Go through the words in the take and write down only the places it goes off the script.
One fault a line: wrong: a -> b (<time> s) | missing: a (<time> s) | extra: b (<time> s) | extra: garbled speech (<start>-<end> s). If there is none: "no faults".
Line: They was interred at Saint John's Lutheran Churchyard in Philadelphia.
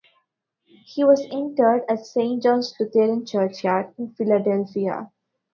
wrong: They -> He (0.8 s)